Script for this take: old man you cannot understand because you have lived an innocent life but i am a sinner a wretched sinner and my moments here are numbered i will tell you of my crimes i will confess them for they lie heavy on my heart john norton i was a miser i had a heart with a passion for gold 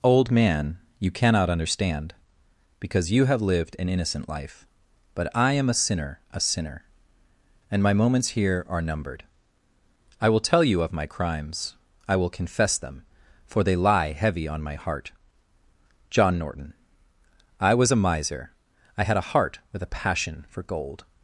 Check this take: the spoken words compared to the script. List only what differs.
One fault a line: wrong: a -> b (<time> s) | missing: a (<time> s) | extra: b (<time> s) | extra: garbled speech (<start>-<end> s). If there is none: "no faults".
missing: wretched (6.4 s)